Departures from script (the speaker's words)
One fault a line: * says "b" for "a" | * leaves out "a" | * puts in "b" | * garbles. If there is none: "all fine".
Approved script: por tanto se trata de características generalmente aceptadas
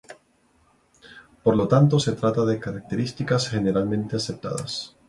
* puts in "lo"